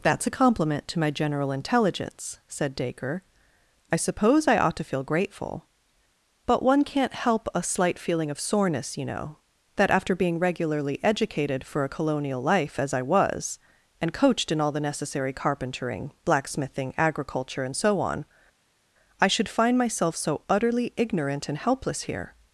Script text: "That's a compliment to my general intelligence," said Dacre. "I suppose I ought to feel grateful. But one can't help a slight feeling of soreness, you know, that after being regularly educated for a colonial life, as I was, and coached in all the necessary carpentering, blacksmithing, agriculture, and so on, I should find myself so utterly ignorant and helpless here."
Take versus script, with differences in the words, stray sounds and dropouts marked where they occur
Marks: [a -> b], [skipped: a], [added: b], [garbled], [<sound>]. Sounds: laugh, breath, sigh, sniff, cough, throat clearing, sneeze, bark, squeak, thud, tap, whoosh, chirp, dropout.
"That's a compliment to my general intelligence," said Dacre. "I suppose I ought to feel grateful. But one can't help a slight feeling of soreness, you know, that after being regularly educated for a colonial life, as I was, and coached in all the necessary carpentering, blacksmithing, agriculture, and so on, I should find myself so utterly ignorant and helpless here."